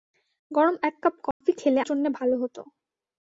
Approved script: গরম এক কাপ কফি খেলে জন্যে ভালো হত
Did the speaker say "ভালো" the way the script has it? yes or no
yes